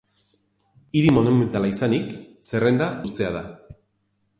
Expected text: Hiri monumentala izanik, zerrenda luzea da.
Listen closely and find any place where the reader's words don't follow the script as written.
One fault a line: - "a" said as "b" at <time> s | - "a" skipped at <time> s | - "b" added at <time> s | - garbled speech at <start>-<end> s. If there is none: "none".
none